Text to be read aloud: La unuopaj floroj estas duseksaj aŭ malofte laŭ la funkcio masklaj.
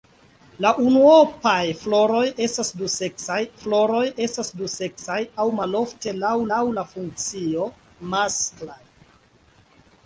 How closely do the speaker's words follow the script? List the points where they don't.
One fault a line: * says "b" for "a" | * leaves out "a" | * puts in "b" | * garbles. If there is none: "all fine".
* puts in "floroj estas duseksaj"
* puts in "laŭ"